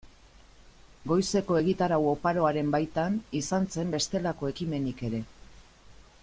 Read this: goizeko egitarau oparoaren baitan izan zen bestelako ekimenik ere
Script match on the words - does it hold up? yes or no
yes